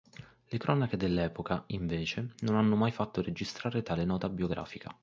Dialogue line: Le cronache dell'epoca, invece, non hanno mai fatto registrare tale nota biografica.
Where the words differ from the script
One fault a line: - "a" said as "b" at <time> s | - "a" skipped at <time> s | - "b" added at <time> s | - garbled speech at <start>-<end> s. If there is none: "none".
none